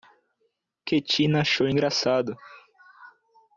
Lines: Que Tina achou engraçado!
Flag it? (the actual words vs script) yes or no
no